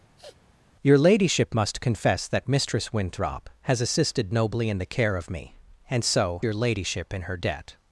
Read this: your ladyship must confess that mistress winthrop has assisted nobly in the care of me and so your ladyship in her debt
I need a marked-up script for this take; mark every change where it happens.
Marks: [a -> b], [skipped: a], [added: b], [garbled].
your ladyship must confess that mistress winthrop has assisted nobly in the care of me and so your ladyship in her debt